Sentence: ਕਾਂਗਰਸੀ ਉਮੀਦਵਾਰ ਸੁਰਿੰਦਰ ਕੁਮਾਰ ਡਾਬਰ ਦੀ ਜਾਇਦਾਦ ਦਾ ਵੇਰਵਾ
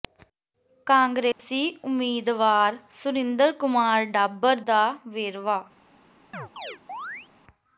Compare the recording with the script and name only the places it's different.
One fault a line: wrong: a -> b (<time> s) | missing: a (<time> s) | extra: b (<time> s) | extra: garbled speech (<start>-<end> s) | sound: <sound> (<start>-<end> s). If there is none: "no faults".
sound: dropout (1.3-1.4 s)
missing: ਦੀ ਜਾਇਦਾਦ (4.6 s)
sound: chirp (6.3-7.3 s)